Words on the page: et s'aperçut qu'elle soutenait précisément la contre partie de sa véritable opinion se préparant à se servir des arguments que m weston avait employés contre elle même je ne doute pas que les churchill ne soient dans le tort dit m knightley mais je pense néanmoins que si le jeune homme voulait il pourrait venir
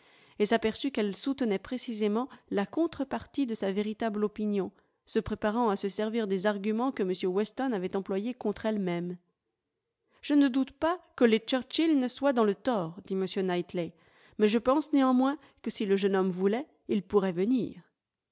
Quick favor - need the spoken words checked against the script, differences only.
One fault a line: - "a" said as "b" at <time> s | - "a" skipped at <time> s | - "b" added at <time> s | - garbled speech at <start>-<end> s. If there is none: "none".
none